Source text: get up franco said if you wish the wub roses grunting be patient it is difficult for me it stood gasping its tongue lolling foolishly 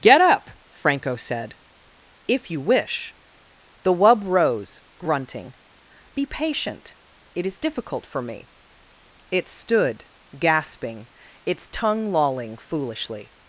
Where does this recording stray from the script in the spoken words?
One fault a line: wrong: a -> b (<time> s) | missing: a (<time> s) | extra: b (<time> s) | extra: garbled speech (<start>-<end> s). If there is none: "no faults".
wrong: roses -> rose (4.2 s)